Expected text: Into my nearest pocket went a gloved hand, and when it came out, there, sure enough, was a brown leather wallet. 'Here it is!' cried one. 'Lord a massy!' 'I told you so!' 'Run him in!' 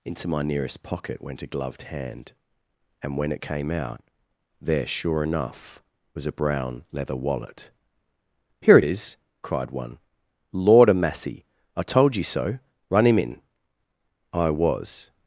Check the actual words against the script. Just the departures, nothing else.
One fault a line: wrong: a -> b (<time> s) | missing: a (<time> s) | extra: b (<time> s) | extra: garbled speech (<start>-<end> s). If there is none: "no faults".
extra: I was (14.3 s)